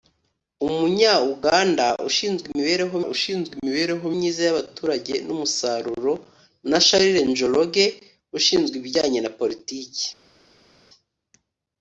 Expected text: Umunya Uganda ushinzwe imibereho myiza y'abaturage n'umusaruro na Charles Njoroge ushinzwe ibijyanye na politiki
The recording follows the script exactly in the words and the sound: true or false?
false